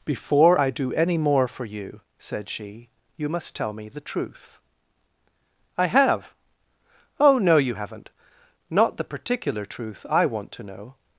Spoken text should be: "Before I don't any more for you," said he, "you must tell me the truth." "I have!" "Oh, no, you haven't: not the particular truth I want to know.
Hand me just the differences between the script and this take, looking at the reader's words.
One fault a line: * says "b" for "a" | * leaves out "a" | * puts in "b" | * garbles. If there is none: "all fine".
* says "do" for "don't"
* says "she" for "he"